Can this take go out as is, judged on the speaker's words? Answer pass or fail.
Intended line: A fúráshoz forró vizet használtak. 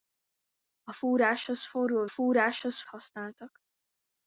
fail